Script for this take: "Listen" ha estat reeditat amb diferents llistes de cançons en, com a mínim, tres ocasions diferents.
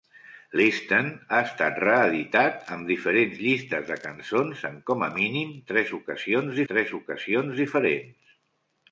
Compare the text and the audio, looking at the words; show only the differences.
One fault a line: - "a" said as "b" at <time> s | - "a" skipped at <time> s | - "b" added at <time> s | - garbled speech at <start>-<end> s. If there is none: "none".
- "tres ocasions" added at 6.7 s